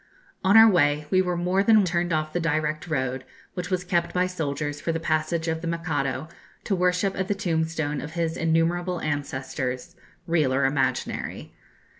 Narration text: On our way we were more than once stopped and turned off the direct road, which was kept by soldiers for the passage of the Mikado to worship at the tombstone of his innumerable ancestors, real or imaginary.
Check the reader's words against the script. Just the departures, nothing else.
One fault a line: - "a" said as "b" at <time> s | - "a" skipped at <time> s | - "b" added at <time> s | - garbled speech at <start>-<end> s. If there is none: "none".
- "once stopped and" skipped at 1.8 s